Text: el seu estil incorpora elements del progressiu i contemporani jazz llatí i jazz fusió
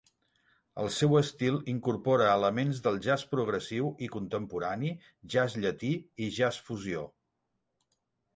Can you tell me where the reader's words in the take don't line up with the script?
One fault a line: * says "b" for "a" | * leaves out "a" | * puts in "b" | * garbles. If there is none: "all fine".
* puts in "jazz"